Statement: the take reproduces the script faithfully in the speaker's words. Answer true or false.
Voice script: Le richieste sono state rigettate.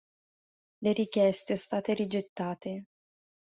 false